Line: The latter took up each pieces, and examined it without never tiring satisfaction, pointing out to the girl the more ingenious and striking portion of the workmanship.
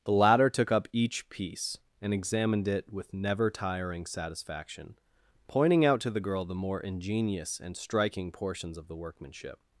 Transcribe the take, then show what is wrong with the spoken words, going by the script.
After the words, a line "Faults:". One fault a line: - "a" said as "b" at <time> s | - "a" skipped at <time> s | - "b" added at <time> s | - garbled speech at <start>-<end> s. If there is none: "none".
The latter took up each piece, and examined it with never tiring satisfaction, pointing out to the girl the more ingenious and striking portions of the workmanship.
Faults:
- "pieces" said as "piece" at 1.3 s
- "without" said as "with" at 2.9 s
- "portion" said as "portions" at 8.3 s